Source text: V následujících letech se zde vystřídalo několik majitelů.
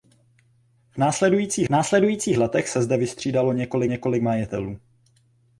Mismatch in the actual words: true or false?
true